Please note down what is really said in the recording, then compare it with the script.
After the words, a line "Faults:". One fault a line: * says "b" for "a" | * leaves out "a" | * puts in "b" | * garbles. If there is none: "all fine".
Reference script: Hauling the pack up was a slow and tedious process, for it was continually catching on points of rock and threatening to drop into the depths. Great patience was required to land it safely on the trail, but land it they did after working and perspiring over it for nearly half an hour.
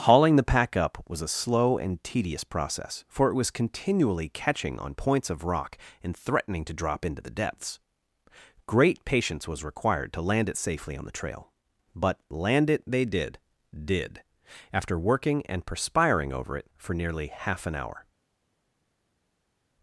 Hauling the pack up was a slow and tedious process, for it was continually catching on points of rock and threatening to drop into the depths. Great patience was required to land it safely on the trail, but land it they did did after working and perspiring over it for nearly half an hour.
Faults:
* puts in "did"